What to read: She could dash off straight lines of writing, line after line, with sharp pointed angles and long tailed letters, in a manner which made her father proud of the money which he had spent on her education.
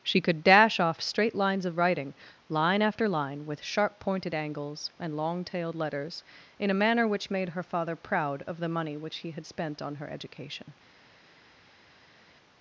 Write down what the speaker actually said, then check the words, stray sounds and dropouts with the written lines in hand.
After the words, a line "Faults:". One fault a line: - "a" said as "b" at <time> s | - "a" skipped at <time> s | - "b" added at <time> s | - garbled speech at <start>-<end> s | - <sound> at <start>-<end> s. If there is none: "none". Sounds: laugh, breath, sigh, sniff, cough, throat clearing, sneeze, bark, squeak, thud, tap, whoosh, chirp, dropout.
She could dash off straight lines of writing, line after line, with sharp pointed angles and long tailed letters, in a manner which made her father proud of the money which he had spent on her education.
Faults:
none